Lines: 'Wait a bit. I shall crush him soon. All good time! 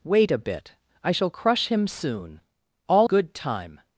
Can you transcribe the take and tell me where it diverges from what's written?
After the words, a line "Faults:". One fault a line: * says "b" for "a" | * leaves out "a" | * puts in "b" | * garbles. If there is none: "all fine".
'Wait a bit. I shall crush him soon. All good time!
Faults:
all fine